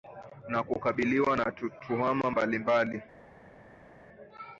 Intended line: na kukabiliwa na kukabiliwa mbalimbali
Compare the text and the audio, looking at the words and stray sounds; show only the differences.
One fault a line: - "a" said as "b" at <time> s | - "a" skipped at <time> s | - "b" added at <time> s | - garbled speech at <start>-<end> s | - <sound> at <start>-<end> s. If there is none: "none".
- "kukabiliwa" said as "tuhuma" at 1.5 s